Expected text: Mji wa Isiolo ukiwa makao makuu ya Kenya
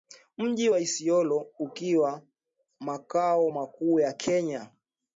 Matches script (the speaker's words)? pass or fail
pass